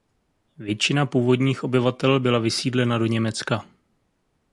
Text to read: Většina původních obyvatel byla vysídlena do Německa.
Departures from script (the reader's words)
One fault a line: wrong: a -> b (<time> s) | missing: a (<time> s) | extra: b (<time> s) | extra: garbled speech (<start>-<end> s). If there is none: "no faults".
no faults